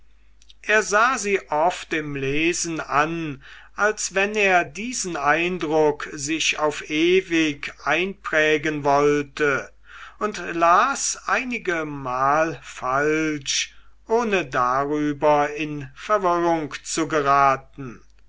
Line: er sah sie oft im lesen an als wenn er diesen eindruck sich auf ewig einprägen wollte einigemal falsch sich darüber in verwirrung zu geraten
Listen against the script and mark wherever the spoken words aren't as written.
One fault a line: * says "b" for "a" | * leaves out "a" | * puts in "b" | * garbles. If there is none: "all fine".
* puts in "und las"
* says "ohne" for "sich"